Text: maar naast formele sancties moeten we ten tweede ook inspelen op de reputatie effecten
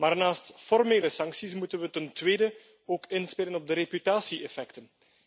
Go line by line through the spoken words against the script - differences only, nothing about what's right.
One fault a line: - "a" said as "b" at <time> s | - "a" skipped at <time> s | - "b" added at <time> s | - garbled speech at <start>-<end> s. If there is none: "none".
none